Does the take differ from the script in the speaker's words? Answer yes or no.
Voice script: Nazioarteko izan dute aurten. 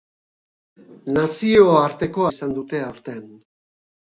no